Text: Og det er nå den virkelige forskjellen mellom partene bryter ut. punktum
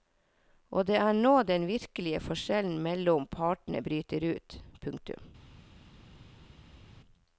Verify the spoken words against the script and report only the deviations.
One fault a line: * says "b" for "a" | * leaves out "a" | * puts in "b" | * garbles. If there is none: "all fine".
all fine